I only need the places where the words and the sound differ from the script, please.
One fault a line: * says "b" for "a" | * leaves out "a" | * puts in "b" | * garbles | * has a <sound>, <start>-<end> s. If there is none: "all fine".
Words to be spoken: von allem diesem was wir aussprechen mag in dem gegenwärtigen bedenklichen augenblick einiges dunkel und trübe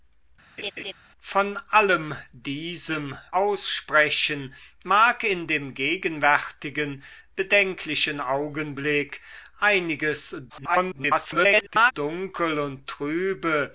* has a laugh, 0.6-0.9 s
* leaves out "was wir"
* garbles